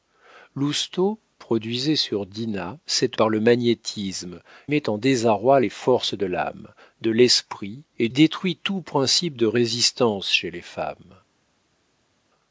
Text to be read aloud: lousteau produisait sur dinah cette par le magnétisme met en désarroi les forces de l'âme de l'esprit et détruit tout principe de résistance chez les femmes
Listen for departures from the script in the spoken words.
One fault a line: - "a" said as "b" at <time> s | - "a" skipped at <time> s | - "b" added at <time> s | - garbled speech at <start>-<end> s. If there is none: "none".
none